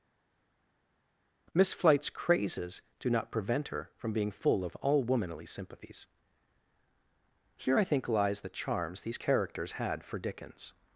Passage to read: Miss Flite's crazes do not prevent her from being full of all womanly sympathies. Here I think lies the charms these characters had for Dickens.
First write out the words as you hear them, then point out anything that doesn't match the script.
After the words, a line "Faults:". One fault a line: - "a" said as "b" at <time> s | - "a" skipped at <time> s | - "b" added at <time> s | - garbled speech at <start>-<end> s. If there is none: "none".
Miss Flite's crazes do not prevent her from being full of all womanly sympathies. Here I think lies the charms these characters had for Dickens.
Faults:
none